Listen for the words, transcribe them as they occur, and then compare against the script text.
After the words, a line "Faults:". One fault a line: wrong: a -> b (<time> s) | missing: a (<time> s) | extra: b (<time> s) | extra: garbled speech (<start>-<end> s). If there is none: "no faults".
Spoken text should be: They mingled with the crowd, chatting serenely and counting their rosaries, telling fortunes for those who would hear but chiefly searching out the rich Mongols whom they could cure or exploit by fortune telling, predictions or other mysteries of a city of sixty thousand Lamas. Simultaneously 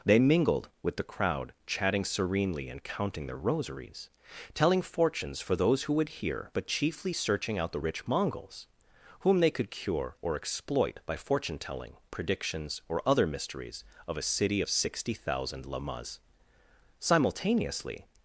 They mingled with the crowd, chatting serenely and counting their rosaries, telling fortunes for those who would hear but chiefly searching out the rich Mongols whom they could cure or exploit by fortune telling, predictions or other mysteries of a city of sixty thousand Lamas. Simultaneously
Faults:
no faults